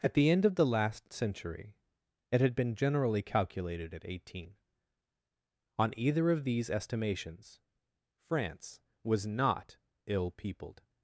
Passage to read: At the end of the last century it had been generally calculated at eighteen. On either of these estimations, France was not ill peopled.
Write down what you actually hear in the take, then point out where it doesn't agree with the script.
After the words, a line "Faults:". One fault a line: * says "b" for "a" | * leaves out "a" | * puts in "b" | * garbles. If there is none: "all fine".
At the end of the last century it had been generally calculated at eighteen. On either of these estimations, France was not ill peopled.
Faults:
all fine